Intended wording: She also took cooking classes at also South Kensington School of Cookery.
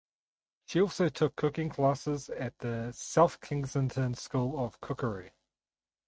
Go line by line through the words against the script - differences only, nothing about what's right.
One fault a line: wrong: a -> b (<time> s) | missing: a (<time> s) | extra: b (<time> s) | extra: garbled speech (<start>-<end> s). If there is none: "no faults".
wrong: also -> the (2.6 s)